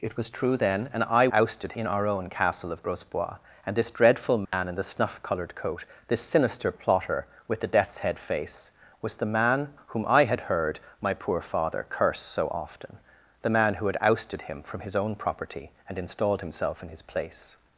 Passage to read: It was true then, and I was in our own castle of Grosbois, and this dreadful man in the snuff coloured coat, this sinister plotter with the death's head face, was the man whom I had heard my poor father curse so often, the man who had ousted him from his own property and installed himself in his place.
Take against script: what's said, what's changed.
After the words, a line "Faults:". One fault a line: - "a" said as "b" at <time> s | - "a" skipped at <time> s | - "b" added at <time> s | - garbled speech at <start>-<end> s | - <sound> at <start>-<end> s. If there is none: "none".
It was true then, and I ousted in our own castle of Grosbois, and this dreadful man in the snuff coloured coat, this sinister plotter with the death's head face, was the man whom I had heard my poor father curse so often, the man who had ousted him from his own property and installed himself in his place.
Faults:
- "was" said as "ousted" at 1.3 s
- dropout at 4.5-4.5 s